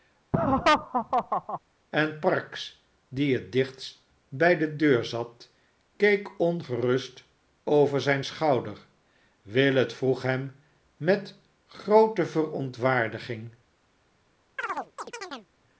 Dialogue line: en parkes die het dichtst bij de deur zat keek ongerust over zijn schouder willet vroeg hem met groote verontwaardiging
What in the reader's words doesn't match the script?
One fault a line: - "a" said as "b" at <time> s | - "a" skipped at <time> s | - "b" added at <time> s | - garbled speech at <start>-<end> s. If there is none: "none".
none